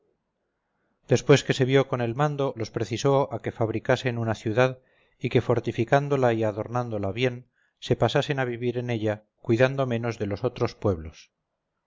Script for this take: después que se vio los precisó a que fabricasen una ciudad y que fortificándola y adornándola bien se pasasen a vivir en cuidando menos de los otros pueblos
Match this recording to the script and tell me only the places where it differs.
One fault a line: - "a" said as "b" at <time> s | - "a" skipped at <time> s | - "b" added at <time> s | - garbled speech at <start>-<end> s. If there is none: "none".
- "con el mando" added at 1.9 s
- "ella" added at 8.9 s